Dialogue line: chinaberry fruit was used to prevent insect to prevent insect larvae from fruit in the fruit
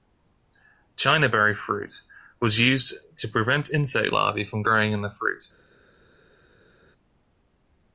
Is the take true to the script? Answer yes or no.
no